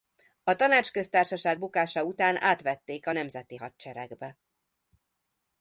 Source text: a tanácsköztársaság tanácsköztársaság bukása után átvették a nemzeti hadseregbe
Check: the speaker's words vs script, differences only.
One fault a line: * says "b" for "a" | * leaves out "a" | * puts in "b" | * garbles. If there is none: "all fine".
* leaves out "tanácsköztársaság"